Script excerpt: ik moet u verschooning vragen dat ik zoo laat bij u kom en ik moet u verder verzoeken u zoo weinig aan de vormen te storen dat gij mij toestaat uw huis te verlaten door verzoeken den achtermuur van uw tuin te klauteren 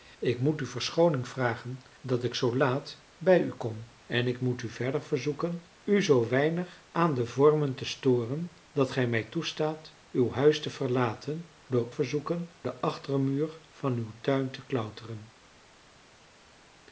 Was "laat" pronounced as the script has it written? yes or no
yes